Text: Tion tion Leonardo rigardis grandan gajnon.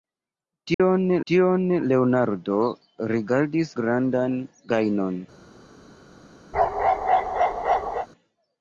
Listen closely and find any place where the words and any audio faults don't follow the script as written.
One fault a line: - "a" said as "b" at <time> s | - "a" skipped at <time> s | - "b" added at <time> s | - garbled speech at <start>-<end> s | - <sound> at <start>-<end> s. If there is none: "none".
- dropout at 0.7-0.8 s
- bark at 6.5-8.1 s